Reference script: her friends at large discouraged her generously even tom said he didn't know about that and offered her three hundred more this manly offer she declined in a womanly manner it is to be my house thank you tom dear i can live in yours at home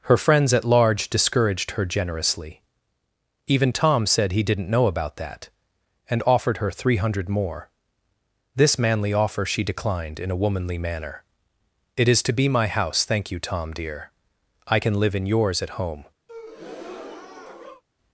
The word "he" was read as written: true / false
true